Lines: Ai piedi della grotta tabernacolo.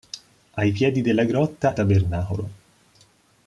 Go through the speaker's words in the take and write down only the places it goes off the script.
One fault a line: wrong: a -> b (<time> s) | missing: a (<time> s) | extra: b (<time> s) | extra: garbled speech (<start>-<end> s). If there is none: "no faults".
no faults